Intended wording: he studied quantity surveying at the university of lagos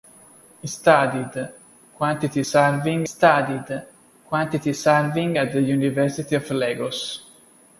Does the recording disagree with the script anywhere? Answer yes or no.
yes